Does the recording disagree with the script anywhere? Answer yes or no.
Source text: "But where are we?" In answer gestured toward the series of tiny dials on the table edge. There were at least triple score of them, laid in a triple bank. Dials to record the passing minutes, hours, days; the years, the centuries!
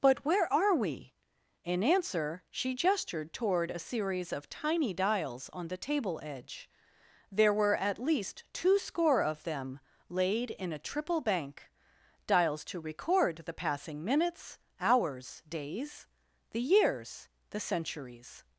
yes